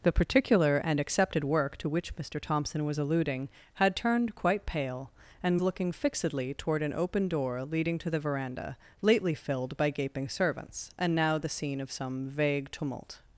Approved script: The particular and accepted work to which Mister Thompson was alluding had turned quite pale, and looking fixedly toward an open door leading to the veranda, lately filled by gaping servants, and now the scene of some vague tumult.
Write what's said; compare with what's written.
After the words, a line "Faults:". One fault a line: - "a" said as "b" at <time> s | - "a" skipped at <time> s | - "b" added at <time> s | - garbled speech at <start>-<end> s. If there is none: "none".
The particular and accepted work to which Mister Thompson was alluding had turned quite pale, and looking fixedly toward an open door leading to the veranda, lately filled by gaping servants, and now the scene of some vague tumult.
Faults:
none